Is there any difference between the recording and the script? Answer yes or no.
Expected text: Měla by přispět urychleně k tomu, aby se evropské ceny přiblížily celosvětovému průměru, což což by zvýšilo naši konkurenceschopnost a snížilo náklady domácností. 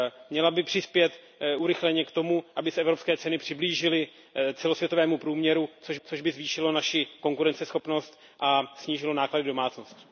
no